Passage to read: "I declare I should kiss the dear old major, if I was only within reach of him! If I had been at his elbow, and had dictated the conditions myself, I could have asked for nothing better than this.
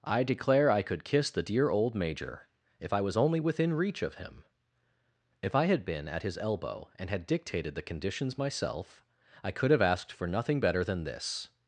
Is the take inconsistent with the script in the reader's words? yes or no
yes